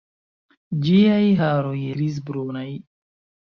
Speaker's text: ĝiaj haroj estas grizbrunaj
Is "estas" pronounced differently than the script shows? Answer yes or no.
yes